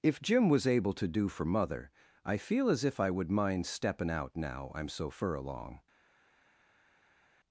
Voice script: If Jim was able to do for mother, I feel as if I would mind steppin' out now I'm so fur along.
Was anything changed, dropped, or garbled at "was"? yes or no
no